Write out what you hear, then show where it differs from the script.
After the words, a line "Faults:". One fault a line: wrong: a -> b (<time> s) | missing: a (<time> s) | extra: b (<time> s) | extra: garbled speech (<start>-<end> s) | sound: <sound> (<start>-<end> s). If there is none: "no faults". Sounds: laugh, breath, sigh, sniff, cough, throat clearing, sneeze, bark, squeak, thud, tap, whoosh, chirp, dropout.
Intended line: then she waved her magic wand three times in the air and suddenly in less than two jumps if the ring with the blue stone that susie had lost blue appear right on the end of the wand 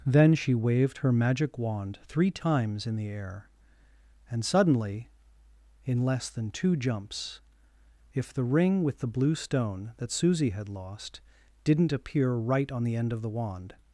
then she waved her magic wand three times in the air and suddenly in less than two jumps if the ring with the blue stone that susie had lost didn't appear right on the end of the wand
Faults:
wrong: blue -> didn't (11.6 s)